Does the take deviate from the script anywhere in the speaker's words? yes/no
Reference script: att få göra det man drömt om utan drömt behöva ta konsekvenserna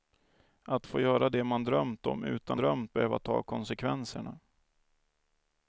no